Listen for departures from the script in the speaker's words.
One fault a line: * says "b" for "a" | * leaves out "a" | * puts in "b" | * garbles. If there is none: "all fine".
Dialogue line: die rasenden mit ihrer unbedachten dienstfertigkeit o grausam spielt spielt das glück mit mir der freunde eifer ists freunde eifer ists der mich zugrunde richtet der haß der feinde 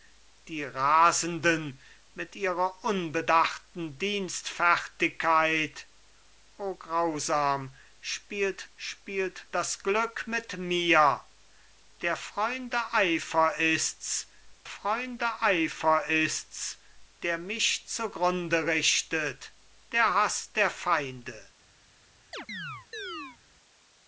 all fine